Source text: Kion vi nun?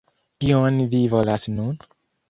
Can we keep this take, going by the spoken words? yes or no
no